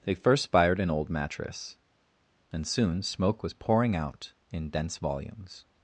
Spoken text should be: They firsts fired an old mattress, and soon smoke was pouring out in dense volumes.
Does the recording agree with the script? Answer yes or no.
no